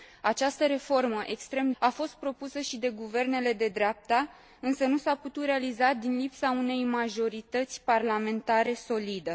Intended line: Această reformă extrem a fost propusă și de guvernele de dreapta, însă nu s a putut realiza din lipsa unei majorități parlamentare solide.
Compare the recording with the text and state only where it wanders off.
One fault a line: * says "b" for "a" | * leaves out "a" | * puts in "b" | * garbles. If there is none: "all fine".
all fine